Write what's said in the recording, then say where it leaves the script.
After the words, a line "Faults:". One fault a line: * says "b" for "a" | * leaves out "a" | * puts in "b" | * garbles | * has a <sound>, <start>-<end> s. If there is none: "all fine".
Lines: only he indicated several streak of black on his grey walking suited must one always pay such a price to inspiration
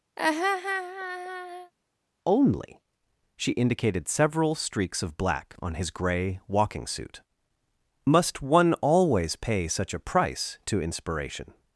only she indicated several streaks of black on his grey walking suit must one always pay such a price to inspiration
Faults:
* has a laugh, 0.2-1.7 s
* says "she" for "he"
* says "streaks" for "streak"
* says "suit" for "suited"